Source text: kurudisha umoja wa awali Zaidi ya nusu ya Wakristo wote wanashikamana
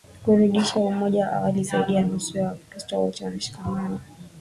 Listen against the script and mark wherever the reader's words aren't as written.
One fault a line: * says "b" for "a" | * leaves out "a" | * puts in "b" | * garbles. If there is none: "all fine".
all fine